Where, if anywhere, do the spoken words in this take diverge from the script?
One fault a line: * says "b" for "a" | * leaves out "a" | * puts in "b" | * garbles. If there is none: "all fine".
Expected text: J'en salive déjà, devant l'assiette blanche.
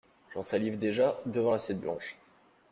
all fine